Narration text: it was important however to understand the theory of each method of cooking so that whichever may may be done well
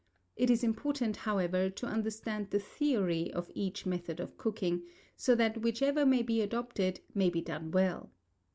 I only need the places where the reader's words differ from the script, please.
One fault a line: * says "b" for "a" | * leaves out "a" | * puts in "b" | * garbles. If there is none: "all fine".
* says "is" for "was"
* puts in "be adopted"